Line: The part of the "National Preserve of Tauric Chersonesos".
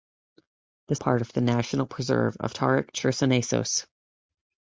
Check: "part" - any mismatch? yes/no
no